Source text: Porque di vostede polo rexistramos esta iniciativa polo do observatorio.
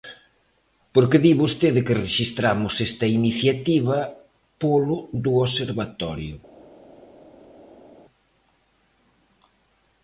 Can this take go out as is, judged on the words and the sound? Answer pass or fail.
fail